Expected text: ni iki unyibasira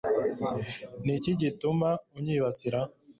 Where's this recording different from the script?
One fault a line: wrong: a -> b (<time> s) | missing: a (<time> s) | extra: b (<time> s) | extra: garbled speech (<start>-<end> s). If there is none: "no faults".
extra: gituma (1.4 s)